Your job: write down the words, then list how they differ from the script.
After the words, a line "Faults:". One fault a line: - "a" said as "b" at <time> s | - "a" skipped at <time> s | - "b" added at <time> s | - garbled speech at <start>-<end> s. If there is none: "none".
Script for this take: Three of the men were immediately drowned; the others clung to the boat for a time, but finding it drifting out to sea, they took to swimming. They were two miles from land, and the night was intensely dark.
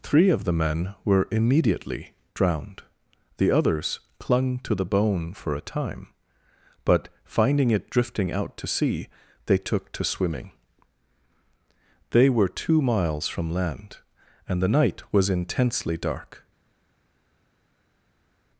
Three of the men were immediately drowned; the others clung to the bone for a time, but finding it drifting out to sea, they took to swimming. They were two miles from land, and the night was intensely dark.
Faults:
- "boat" said as "bone" at 4.8 s